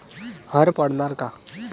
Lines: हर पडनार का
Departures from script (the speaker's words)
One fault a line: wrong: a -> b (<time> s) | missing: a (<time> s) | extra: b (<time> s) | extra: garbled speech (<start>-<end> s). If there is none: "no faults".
no faults